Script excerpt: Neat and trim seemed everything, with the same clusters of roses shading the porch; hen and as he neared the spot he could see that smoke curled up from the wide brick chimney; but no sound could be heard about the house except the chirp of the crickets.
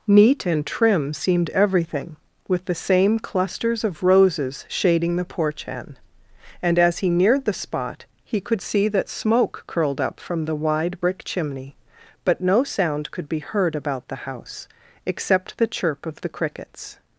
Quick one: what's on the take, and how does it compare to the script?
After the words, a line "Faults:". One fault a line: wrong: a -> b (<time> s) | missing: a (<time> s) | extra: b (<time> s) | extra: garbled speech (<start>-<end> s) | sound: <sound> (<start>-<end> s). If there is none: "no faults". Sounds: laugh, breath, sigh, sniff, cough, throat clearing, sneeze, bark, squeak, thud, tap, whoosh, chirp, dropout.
Neat and trim seemed everything, with the same clusters of roses shading the porch; hen and as he neared the spot he could see that smoke curled up from the wide brick chimney; but no sound could be heard about the house except the chirp of the crickets.
Faults:
no faults